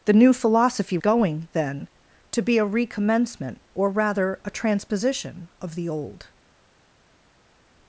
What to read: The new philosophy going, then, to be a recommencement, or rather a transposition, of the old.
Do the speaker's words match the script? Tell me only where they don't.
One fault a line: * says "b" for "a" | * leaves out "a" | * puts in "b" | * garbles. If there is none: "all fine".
all fine